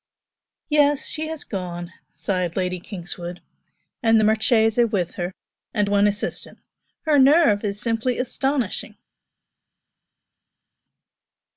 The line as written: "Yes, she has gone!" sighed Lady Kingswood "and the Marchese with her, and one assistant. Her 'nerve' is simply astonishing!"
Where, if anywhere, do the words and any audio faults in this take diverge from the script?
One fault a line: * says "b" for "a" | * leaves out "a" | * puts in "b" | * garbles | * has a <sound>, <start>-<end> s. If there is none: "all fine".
all fine